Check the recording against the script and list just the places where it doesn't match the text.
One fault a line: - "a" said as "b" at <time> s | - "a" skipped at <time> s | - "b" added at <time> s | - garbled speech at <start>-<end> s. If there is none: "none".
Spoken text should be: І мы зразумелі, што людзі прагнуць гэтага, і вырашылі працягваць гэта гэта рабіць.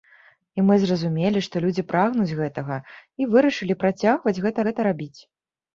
none